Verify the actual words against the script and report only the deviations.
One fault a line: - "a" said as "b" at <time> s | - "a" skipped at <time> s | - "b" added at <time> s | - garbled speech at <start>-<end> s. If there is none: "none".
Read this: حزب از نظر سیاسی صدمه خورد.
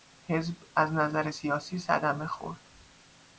none